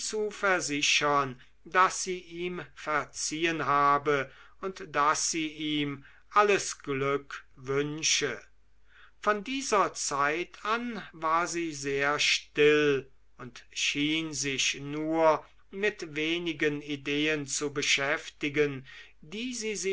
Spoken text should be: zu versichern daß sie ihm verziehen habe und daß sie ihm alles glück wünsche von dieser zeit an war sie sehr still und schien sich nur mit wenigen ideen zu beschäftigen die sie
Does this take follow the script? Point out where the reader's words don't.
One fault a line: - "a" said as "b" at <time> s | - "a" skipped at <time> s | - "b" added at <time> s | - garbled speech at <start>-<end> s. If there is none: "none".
none